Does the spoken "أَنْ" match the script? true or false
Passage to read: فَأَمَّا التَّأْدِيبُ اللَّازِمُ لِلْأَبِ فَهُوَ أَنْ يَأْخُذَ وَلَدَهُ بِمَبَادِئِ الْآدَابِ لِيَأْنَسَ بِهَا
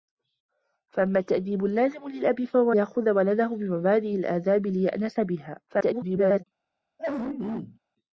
false